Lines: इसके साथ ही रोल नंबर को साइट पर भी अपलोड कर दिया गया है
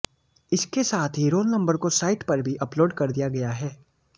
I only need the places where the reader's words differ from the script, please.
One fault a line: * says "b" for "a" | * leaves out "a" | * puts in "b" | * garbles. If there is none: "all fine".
all fine